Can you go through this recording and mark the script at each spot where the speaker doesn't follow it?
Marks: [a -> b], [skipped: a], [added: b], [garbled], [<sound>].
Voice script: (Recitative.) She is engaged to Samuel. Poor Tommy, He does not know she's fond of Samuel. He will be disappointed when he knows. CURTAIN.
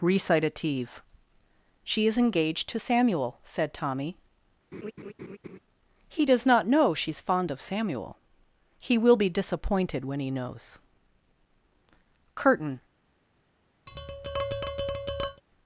(Recitative.) She is engaged to Samuel. [Poor -> Said] Tommy, [laugh] He does not know she's fond of Samuel. He will be disappointed when he knows. CURTAIN. [tap]